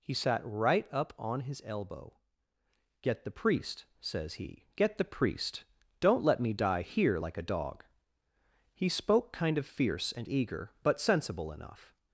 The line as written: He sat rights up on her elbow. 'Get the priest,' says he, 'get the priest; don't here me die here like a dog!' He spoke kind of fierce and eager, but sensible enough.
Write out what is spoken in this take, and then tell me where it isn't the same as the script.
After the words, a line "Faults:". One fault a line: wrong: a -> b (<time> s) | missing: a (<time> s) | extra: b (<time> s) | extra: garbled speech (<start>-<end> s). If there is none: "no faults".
He sat right up on his elbow. 'Get the priest,' says he, 'get the priest; don't let me die here like a dog!' He spoke kind of fierce and eager, but sensible enough.
Faults:
wrong: rights -> right (0.4 s)
wrong: her -> his (1.4 s)
wrong: here -> let (6.2 s)